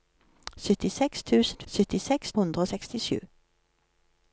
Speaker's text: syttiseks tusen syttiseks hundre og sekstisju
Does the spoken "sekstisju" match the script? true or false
true